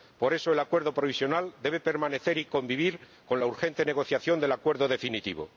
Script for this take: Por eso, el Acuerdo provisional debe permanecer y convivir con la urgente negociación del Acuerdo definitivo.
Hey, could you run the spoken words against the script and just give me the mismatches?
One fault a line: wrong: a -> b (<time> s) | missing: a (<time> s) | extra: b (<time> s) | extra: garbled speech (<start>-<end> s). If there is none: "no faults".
no faults